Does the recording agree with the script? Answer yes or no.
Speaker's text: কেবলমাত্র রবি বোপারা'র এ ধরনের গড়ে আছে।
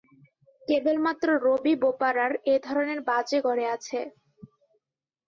no